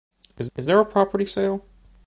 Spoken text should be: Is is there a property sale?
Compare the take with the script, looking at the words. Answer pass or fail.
pass